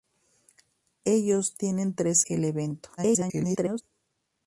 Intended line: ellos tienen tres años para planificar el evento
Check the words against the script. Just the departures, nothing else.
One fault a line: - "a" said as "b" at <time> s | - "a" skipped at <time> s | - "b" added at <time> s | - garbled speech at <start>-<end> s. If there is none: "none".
- "años para planificar" skipped at 2.2 s
- garbled speech at 3.0-3.8 s